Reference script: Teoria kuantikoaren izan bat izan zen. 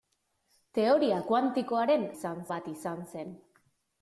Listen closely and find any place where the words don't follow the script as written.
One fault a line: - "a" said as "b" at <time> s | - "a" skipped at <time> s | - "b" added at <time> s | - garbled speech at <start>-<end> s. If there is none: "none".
none